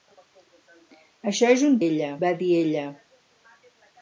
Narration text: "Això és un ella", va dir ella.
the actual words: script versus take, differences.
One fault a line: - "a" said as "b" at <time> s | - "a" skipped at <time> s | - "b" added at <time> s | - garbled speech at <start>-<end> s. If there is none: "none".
none